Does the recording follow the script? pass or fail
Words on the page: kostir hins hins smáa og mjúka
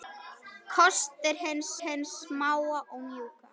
pass